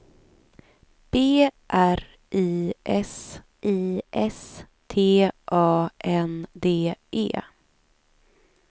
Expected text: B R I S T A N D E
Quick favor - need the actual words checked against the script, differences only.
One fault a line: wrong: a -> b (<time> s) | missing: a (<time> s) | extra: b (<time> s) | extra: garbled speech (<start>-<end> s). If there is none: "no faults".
extra: I S (3.6 s)